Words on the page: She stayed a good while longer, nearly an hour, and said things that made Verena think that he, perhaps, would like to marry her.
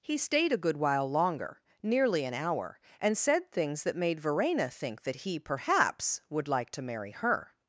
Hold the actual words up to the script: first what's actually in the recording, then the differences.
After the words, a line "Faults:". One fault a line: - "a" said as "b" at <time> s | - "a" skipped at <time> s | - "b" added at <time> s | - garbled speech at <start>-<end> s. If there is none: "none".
He stayed a good while longer, nearly an hour, and said things that made Verena think that he, perhaps, would like to marry her.
Faults:
- "She" said as "He" at 0.0 s